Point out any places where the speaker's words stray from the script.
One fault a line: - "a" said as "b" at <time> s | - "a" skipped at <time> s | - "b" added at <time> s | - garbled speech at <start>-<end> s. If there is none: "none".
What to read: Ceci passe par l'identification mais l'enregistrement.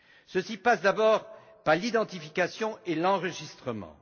- "d'abord" added at 0.8 s
- "mais" said as "et" at 2.9 s